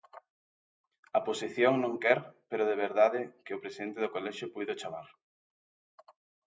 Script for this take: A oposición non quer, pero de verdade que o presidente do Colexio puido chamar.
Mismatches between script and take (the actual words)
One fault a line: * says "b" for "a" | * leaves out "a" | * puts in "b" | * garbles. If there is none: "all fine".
all fine